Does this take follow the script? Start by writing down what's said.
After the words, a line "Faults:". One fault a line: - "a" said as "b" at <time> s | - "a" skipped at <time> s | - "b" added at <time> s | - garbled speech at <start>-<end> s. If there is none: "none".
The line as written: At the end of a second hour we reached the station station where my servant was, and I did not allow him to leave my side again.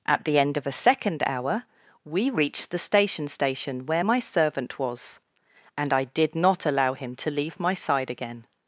At the end of a second hour we reached the station station where my servant was, and I did not allow him to leave my side again.
Faults:
none